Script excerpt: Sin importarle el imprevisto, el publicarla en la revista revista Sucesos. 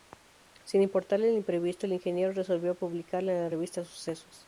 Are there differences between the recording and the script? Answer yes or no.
yes